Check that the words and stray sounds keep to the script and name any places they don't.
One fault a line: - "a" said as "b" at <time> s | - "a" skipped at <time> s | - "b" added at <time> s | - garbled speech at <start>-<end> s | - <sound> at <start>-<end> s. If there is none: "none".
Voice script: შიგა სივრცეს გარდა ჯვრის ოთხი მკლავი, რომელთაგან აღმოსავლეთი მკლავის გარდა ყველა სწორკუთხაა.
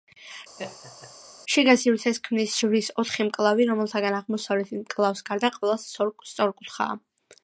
- laugh at 0.6-1.1 s
- "გარდა" said as "ქმნის" at 2.2 s